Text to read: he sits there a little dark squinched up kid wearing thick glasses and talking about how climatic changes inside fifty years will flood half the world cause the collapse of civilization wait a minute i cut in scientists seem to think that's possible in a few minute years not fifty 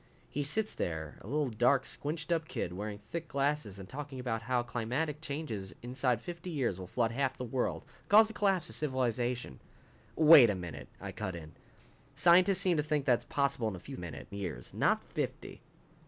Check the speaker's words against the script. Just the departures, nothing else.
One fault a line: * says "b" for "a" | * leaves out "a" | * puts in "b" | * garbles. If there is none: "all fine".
all fine